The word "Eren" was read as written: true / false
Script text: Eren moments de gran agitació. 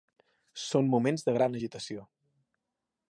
false